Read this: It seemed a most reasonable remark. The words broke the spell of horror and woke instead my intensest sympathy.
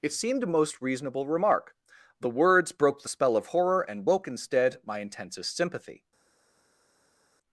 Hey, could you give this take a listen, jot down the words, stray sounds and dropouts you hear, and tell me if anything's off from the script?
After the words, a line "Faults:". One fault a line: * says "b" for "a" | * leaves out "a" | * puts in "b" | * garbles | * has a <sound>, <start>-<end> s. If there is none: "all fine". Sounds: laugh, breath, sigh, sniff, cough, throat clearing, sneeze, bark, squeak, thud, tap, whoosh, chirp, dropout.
It seemed a most reasonable remark. The words broke the spell of horror and woke instead my intensest sympathy.
Faults:
all fine